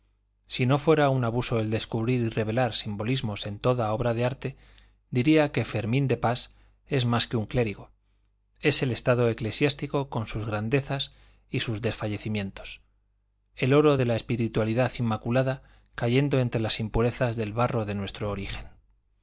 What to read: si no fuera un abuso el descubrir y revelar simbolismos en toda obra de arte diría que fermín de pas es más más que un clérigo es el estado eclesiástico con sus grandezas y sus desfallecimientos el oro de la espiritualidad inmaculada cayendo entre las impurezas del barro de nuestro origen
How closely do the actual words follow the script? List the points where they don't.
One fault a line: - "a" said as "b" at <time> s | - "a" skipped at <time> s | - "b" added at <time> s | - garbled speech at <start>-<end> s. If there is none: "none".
- "más" skipped at 7.3 s